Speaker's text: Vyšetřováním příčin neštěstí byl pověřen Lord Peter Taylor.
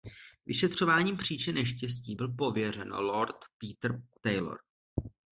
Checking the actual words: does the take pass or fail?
pass